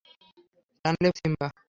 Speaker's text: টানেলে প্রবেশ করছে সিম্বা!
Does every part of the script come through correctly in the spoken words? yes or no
no